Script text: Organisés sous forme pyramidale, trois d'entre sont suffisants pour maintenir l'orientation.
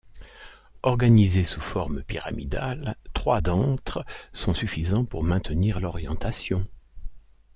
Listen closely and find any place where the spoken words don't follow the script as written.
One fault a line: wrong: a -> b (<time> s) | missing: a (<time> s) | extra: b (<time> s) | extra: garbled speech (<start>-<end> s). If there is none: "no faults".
no faults